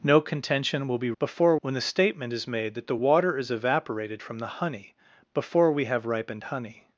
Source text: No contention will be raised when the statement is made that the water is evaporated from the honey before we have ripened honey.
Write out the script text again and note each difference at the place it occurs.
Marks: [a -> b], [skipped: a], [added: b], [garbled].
No contention will be [raised -> before] when the statement is made that the water is evaporated from the honey before we have ripened honey.